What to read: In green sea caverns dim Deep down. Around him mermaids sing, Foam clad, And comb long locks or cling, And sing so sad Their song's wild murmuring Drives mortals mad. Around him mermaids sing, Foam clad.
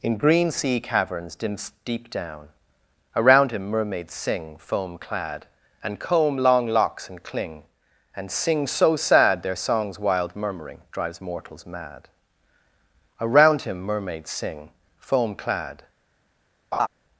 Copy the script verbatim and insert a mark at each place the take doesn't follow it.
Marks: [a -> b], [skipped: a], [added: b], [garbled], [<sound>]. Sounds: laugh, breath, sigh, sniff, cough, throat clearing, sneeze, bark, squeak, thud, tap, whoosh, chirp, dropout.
In green sea caverns dim Deep down. Around him mermaids sing, Foam clad, And comb long locks [or -> and] cling, And sing so sad Their song's wild murmuring Drives mortals mad. Around him mermaids sing, Foam clad. [laugh]